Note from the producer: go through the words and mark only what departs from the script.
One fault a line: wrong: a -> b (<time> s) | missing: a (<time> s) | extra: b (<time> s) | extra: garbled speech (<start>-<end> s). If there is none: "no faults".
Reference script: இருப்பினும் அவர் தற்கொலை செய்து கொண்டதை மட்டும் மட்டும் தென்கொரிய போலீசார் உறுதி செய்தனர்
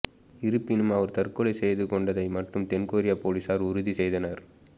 missing: மட்டும் (2.7 s)